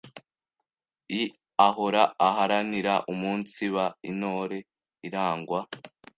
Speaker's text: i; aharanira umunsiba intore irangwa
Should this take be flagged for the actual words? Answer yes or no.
yes